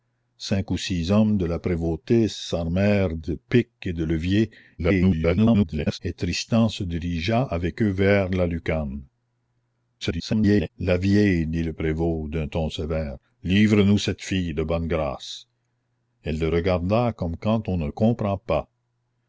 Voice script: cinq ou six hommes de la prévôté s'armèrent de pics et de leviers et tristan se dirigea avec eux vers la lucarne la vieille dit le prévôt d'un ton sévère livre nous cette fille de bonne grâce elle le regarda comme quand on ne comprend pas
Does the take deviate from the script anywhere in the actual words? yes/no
yes